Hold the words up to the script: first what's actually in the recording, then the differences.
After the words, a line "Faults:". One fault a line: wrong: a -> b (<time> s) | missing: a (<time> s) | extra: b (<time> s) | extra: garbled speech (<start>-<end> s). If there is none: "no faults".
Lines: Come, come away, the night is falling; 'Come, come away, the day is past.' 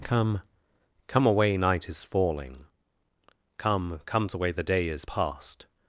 Come, come away, night is falling; 'Come, comes away, the day is past.'
Faults:
missing: the (1.6 s)
wrong: come -> comes (4.0 s)